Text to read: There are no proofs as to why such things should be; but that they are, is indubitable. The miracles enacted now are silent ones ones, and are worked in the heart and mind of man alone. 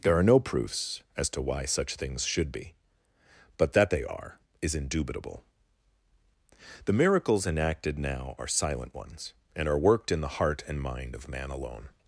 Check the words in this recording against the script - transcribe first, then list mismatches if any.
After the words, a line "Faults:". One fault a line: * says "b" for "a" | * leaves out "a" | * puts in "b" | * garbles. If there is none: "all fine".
There are no proofs as to why such things should be; but that they are, is indubitable. The miracles enacted now are silent ones, and are worked in the heart and mind of man alone.
Faults:
* leaves out "ones"